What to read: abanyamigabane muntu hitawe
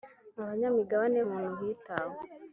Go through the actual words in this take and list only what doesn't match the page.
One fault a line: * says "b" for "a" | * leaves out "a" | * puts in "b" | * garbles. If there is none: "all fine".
all fine